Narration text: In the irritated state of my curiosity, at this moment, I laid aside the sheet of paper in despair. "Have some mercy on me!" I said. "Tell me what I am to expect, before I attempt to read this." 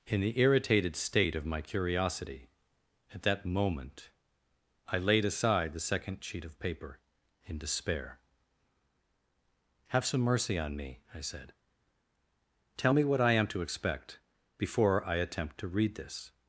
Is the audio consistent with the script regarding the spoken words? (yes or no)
no